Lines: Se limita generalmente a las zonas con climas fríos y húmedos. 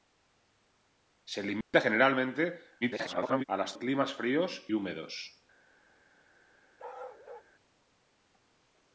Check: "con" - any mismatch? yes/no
yes